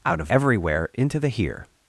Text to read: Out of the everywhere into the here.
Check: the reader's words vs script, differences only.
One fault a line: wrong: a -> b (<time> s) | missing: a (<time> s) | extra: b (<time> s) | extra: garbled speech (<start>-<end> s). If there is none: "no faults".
missing: the (0.3 s)